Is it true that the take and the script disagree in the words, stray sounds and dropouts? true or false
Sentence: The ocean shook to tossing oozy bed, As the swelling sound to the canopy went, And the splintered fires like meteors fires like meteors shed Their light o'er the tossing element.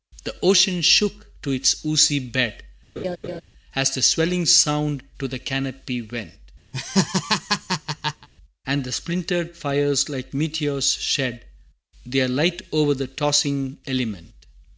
true